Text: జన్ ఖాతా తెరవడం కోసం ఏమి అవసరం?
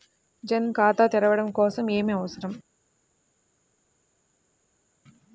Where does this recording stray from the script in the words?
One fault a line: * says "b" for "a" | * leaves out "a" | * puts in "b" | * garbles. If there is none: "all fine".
all fine